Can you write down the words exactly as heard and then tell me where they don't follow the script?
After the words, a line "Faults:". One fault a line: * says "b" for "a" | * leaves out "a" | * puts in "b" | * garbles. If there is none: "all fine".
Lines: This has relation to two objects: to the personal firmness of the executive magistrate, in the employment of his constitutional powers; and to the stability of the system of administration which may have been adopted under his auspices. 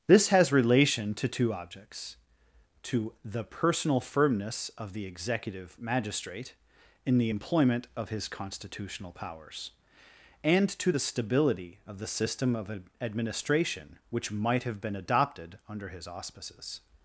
This has relation to two objects: to the personal firmness of the executive magistrate, in the employment of his constitutional powers; and to the stability of the system of administration which might have been adopted under his auspices.
Faults:
* says "might" for "may"